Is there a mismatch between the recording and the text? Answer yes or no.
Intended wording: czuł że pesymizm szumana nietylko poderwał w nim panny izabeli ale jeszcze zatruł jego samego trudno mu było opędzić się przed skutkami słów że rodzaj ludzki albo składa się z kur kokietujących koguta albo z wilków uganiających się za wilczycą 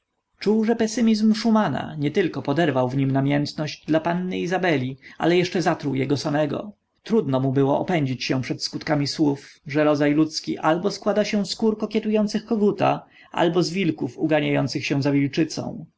yes